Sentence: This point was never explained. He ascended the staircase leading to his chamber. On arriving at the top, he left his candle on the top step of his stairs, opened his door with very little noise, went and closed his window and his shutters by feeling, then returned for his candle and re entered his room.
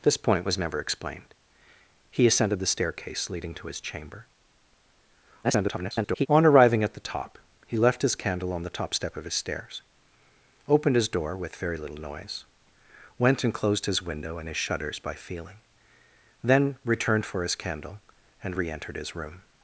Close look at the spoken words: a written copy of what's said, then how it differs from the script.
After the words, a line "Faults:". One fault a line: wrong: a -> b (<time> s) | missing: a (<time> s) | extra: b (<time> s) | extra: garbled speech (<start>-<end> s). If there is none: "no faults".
This point was never explained. He ascended the staircase leading to his chamber. [garbled] On arriving at the top, he left his candle on the top step of his stairs, opened his door with very little noise, went and closed his window and his shutters by feeling, then returned for his candle and re entered his room.
Faults:
extra: garbled speech (5.4-6.3 s)